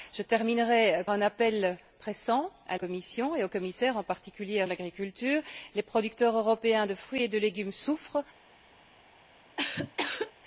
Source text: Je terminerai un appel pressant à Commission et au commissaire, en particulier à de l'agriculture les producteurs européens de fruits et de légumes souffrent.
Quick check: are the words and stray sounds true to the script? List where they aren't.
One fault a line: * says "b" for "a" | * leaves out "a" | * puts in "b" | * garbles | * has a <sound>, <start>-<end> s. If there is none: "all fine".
* has a cough, 9.6-10.3 s